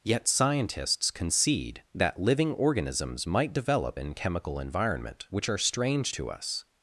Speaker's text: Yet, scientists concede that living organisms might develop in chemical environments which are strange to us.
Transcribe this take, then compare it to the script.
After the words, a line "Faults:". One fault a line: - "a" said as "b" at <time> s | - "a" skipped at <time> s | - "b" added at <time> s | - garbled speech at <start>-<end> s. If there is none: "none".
Yet, scientists concede that living organisms might develop in chemical environment which are strange to us.
Faults:
- "environments" said as "environment" at 4.6 s